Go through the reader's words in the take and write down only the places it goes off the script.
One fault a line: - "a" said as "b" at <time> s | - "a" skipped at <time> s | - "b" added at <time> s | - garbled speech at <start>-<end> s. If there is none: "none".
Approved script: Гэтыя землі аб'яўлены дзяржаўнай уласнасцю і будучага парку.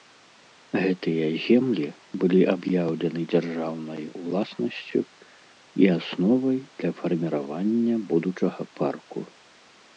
- "былі" added at 2.2 s
- "асновай для фарміравання" added at 6.0 s